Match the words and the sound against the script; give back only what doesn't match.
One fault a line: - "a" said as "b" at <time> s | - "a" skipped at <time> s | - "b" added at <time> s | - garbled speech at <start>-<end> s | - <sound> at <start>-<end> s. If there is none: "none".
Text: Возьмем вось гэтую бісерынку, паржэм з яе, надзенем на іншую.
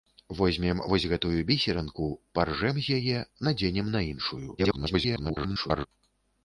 - garbled speech at 4.6-5.9 s